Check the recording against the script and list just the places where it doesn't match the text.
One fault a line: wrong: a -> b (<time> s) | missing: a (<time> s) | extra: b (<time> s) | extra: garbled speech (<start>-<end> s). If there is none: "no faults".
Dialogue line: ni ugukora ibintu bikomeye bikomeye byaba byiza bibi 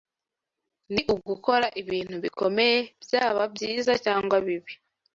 missing: bikomeye (2.8 s)
extra: cyangwa (4.0 s)